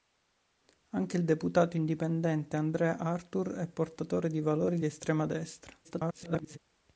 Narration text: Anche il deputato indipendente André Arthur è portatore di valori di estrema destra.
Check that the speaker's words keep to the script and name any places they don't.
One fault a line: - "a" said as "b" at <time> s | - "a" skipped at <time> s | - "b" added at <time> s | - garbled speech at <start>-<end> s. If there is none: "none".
- garbled speech at 5.8-6.6 s